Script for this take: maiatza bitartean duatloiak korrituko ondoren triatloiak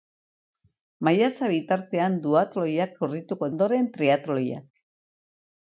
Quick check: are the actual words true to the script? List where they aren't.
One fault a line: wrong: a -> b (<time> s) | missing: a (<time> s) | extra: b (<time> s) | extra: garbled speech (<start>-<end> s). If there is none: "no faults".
no faults